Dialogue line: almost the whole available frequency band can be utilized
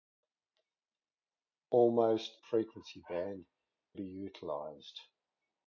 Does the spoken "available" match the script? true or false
false